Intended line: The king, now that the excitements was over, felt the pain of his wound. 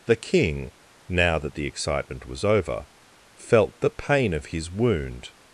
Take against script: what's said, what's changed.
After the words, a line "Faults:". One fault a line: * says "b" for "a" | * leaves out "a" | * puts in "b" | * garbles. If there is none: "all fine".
The king, now that the excitement was over, felt the pain of his wound.
Faults:
* says "excitement" for "excitements"